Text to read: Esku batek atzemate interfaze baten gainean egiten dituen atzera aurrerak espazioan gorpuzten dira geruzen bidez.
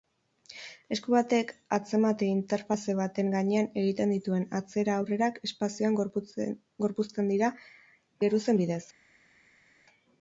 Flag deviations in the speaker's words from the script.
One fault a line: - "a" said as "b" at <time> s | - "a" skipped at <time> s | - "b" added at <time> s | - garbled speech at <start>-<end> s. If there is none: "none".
none